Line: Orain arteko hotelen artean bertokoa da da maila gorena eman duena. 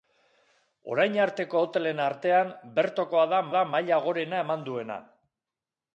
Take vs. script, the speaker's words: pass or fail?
pass